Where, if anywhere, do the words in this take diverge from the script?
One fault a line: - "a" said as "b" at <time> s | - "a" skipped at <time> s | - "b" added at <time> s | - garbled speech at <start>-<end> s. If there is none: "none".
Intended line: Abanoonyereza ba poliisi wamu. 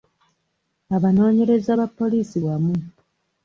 none